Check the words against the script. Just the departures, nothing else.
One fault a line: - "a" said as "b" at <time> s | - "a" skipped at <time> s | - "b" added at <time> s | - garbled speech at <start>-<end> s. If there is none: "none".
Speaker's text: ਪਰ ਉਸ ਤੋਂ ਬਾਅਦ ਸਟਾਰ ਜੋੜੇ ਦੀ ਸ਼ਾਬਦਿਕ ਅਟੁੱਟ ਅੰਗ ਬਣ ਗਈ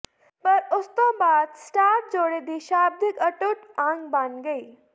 none